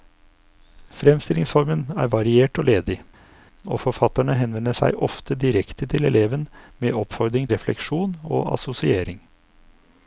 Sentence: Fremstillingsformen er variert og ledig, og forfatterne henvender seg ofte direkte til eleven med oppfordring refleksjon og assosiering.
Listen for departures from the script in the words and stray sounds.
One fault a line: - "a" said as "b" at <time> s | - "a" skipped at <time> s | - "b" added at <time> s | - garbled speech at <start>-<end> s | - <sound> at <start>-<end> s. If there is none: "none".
none